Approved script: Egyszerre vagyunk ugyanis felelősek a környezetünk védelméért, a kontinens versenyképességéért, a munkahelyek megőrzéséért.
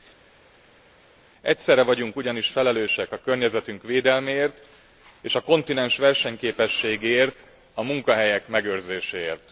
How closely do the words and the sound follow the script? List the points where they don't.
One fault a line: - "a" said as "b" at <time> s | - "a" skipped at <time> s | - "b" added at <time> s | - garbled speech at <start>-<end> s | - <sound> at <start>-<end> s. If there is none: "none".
- "és" added at 5.2 s